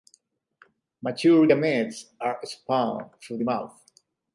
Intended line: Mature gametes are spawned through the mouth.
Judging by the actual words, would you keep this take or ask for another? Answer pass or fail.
pass